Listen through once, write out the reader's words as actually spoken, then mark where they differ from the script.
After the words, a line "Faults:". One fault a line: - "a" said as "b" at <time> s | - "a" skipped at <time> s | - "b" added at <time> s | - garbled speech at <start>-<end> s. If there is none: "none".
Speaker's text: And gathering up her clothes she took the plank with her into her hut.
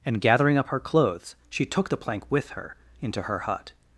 And gathering up her clothes she took the plank with her into her hut.
Faults:
none